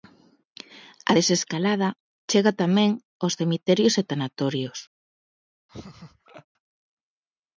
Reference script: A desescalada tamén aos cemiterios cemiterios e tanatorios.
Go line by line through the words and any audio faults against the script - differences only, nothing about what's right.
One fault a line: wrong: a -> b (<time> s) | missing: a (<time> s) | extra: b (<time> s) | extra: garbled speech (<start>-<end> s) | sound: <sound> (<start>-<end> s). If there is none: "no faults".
extra: chega (2.3 s)
missing: cemiterios (3.9 s)
sound: laugh (5.7-6.5 s)